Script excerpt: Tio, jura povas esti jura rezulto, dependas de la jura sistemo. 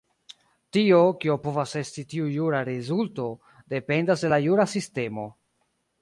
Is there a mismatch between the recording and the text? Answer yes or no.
yes